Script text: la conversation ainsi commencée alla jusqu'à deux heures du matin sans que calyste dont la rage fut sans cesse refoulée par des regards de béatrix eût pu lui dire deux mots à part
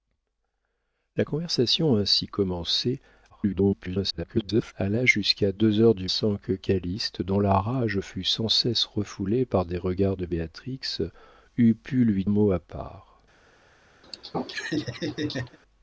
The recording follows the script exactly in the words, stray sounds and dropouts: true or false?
false